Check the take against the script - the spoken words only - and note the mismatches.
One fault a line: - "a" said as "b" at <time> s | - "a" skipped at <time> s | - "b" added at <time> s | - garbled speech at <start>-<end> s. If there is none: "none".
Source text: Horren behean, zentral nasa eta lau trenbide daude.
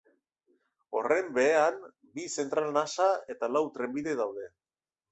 - "bi" added at 2.2 s